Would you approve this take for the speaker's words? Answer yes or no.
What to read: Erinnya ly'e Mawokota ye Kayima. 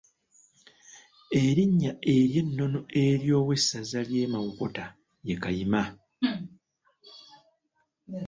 no